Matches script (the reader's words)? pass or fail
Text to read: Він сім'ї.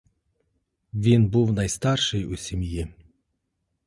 fail